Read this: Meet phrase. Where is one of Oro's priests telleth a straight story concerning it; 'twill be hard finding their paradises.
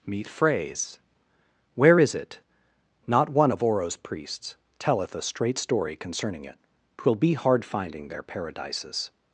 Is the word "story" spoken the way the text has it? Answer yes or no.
yes